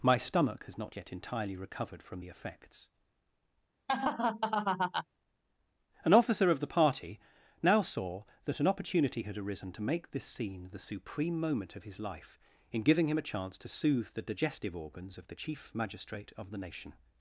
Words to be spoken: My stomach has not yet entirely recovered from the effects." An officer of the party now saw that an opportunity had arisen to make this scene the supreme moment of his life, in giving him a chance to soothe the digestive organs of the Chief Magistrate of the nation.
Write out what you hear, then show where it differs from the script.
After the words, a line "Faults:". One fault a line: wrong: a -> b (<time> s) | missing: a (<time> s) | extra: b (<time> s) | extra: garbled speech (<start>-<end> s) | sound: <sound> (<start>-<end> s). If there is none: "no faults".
My stomach has not yet entirely recovered from the effects." An officer of the party now saw that an opportunity had arisen to make this scene the supreme moment of his life, in giving him a chance to soothe the digestive organs of the Chief Magistrate of the nation.
Faults:
sound: laugh (3.9-5.0 s)